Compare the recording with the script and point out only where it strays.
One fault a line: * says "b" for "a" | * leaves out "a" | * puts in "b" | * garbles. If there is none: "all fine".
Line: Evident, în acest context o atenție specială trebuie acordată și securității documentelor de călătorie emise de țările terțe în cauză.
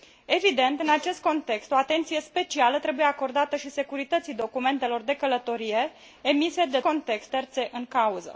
* says "context" for "țările"